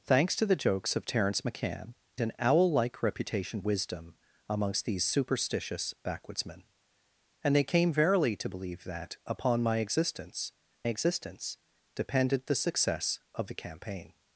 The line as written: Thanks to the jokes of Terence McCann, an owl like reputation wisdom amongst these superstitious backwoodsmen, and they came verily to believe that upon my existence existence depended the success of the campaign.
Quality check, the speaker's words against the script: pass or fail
pass